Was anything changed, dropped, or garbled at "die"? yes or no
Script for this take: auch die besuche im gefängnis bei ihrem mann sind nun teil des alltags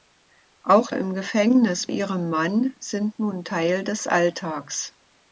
yes